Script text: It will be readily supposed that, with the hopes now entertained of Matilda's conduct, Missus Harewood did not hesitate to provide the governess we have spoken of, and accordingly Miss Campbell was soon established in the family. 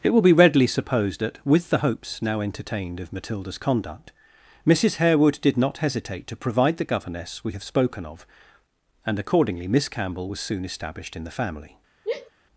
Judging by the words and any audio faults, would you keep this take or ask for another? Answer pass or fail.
fail